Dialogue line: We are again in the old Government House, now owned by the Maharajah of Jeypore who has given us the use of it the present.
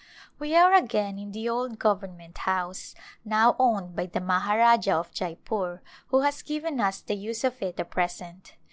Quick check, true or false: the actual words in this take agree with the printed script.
true